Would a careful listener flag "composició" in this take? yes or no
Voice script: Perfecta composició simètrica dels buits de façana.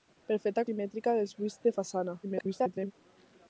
yes